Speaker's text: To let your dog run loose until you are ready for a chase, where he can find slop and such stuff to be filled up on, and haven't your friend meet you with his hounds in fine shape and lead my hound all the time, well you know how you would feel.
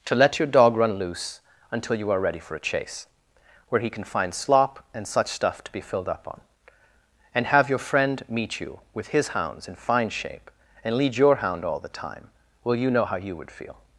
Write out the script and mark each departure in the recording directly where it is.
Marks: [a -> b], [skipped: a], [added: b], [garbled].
To let your dog run loose until you are ready for a chase, where he can find slop and such stuff to be filled up on, and [haven't -> have] your friend meet you with his hounds in fine shape and lead [my -> your] hound all the time, well you know how you would feel.